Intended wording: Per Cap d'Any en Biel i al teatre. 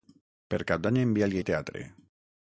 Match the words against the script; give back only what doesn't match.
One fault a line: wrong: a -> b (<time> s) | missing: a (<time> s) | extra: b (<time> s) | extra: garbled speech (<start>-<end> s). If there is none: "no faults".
no faults